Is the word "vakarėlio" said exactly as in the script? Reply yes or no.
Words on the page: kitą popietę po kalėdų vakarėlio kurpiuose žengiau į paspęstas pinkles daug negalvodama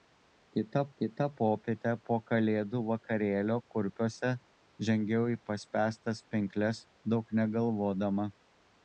yes